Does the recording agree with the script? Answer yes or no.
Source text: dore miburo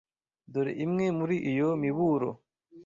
no